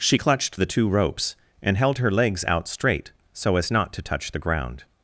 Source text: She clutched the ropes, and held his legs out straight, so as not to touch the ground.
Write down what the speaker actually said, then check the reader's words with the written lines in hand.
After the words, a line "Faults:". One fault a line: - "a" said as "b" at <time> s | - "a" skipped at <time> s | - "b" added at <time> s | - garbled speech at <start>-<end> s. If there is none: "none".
She clutched the two ropes, and held her legs out straight, so as not to touch the ground.
Faults:
- "two" added at 0.7 s
- "his" said as "her" at 2.0 s